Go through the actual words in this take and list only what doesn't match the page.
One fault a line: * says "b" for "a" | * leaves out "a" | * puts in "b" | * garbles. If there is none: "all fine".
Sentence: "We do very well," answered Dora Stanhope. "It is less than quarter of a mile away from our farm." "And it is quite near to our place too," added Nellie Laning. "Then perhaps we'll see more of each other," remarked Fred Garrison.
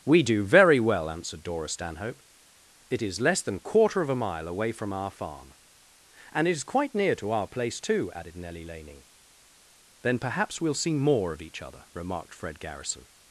all fine